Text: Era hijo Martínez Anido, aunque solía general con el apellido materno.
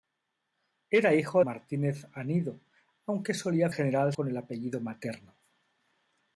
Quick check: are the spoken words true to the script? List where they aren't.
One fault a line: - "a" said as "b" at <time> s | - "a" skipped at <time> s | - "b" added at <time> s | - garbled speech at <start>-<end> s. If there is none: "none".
none